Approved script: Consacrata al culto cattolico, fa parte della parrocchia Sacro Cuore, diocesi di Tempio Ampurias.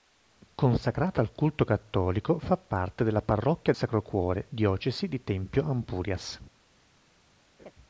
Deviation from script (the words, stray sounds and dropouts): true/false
true